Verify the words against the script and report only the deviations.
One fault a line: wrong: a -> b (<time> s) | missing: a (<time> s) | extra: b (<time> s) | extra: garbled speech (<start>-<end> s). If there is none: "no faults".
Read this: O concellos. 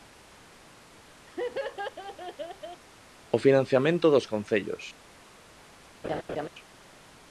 extra: financiamento dos (3.5 s)